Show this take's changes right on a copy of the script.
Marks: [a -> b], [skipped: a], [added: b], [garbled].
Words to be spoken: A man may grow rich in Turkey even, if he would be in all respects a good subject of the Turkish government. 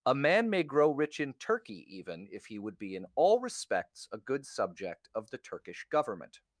A man may grow rich in Turkey even, if he would be in all respects a good subject of the Turkish government.